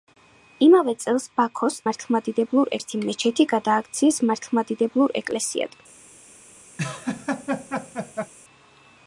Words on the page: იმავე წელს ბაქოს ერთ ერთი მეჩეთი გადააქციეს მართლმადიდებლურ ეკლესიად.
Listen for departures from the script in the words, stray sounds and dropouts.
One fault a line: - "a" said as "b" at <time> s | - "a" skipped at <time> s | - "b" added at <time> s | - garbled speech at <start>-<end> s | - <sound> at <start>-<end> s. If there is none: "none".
- "ერთ" said as "მართლმადიდებლურ" at 1.9 s
- laugh at 6.8-8.3 s